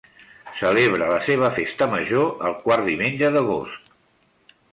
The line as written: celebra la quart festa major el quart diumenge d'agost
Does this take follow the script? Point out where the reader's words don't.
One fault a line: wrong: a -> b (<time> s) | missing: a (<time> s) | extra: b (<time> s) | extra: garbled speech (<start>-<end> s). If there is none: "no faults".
wrong: quart -> seva (1.3 s)